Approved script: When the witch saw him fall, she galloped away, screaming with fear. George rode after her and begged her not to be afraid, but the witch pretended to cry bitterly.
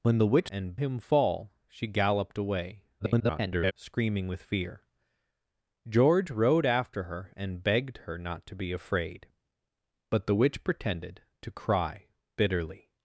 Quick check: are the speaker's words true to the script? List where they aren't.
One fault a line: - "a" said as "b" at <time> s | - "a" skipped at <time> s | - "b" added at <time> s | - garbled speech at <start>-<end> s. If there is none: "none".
- "saw" said as "and" at 0.5 s
- garbled speech at 3.0-3.7 s